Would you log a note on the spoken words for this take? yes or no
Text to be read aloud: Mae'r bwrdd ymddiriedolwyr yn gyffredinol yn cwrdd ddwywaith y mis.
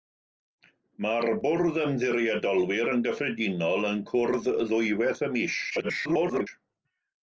yes